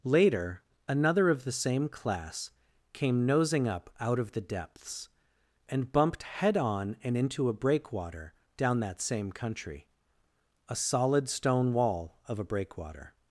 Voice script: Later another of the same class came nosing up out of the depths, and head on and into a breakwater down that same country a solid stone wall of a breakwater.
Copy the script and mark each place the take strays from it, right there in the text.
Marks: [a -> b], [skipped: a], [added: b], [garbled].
Later another of the same class came nosing up out of the depths, and [added: bumped] head on and into a breakwater down that same country a solid stone wall of a breakwater.